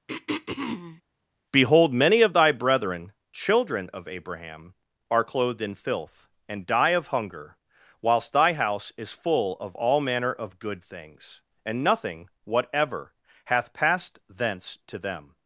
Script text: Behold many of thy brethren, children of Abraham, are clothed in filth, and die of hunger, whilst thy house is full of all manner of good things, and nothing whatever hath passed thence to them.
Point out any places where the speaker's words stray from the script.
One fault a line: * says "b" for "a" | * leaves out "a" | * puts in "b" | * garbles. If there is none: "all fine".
all fine